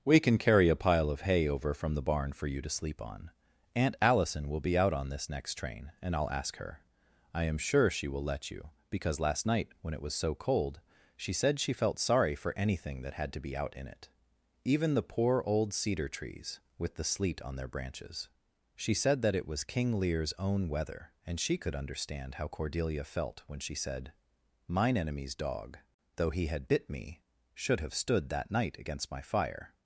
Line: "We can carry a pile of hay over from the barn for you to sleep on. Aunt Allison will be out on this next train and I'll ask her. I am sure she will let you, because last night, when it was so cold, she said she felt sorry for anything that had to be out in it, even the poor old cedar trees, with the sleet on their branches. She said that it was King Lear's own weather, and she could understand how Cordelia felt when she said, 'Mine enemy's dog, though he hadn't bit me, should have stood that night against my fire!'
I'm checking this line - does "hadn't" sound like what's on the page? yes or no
no